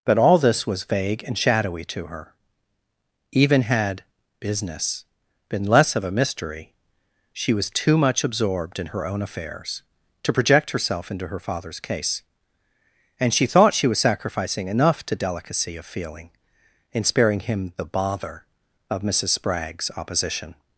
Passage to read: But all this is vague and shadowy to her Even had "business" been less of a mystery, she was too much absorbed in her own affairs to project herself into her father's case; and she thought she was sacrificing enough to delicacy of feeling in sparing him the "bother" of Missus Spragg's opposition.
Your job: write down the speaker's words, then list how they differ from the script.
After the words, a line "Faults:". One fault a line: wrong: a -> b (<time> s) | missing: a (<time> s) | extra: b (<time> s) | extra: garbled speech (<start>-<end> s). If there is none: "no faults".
But all this was vague and shadowy to her Even had "business" been less of a mystery, she was too much absorbed in her own affairs to project herself into her father's case; and she thought she was sacrificing enough to delicacy of feeling in sparing him the "bother" of Missus Spragg's opposition.
Faults:
wrong: is -> was (0.7 s)